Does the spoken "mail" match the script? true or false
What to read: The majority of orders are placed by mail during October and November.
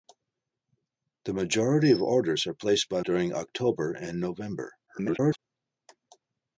false